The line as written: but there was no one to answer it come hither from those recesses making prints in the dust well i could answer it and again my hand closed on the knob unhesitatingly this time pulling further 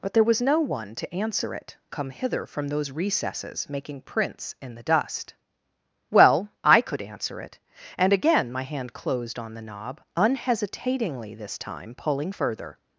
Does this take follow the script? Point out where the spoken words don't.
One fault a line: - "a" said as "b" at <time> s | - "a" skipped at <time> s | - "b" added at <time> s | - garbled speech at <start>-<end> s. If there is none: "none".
none